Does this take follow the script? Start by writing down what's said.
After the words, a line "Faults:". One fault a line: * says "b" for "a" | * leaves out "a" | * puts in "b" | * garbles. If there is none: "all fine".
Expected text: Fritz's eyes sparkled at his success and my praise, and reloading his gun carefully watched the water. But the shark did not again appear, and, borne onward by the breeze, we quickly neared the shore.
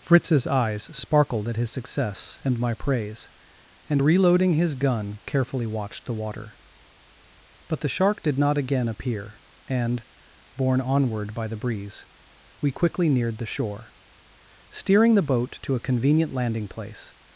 Fritz's eyes sparkled at his success and my praise, and reloading his gun carefully watched the water. But the shark did not again appear, and, borne onward by the breeze, we quickly neared the shore. Steering the boat to a convenient landing place
Faults:
* puts in "Steering the boat to a convenient landing place"